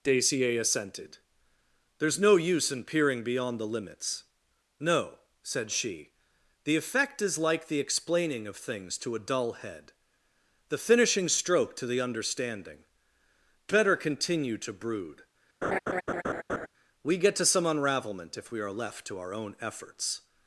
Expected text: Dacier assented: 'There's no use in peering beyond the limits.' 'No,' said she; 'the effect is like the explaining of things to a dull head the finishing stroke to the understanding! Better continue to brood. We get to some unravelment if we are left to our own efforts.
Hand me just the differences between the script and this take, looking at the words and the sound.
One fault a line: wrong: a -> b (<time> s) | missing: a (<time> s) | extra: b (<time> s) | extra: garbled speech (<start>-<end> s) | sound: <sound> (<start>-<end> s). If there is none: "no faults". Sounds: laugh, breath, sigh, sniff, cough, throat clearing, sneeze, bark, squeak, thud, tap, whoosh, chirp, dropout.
sound: laugh (15.6-16.7 s)